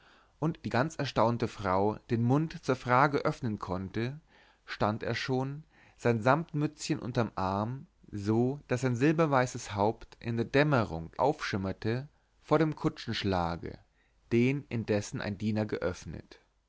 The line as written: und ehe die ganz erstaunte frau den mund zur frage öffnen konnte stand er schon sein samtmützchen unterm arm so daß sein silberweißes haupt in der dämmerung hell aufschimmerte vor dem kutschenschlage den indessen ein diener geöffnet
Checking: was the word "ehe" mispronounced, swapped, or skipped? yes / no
yes